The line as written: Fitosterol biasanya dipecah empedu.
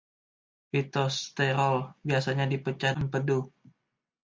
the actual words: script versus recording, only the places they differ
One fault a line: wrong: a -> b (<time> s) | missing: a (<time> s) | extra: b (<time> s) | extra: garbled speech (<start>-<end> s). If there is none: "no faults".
no faults